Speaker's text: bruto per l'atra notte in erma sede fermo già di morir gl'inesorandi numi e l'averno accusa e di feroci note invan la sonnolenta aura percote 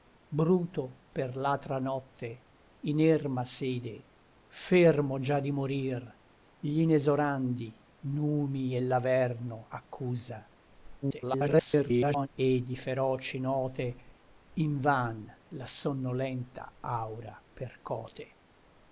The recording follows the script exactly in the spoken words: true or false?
false